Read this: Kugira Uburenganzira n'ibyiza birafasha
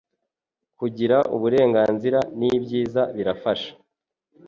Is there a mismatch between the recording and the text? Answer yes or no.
no